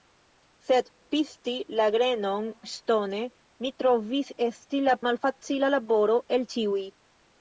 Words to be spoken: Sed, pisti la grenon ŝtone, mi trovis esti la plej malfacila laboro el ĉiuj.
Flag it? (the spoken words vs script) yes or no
yes